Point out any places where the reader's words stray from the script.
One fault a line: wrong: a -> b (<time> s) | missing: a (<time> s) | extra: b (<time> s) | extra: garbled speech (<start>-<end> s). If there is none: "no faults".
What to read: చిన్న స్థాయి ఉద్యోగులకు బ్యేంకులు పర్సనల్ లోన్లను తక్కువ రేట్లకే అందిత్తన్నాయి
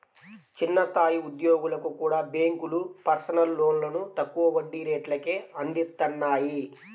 extra: కూడా (2.0 s)
extra: వడ్డీ (4.5 s)